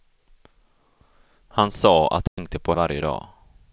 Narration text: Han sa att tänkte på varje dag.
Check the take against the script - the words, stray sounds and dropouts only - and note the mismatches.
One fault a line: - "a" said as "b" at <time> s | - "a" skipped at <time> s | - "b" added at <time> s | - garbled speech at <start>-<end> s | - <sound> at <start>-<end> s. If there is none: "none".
- dropout at 2.3-2.4 s